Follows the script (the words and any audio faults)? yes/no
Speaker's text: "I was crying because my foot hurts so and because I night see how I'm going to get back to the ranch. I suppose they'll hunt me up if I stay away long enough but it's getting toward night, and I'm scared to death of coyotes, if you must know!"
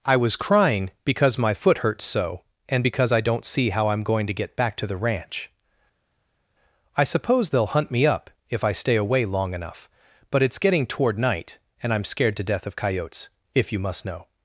no